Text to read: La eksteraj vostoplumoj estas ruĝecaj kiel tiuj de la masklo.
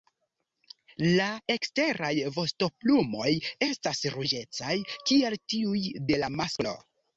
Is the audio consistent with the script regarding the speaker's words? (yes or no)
yes